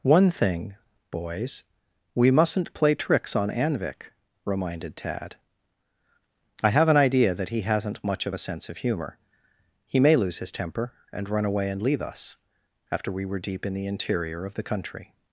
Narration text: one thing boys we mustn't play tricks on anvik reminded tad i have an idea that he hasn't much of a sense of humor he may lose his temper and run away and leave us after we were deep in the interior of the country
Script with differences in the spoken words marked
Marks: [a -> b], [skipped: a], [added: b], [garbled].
one thing boys we mustn't play tricks on anvik reminded tad i have an idea that he hasn't much of a sense of humor he may lose his temper and run away and leave us after we were deep in the interior of the country